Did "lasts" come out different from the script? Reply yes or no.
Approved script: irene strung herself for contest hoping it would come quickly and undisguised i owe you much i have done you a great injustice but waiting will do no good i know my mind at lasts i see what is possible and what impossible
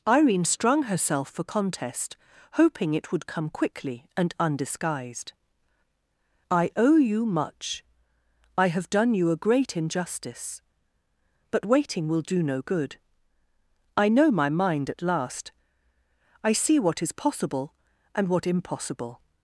yes